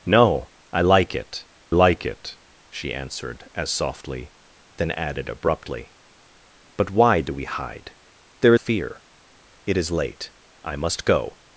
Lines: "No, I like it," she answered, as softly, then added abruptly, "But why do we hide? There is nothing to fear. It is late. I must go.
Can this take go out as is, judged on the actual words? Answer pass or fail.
fail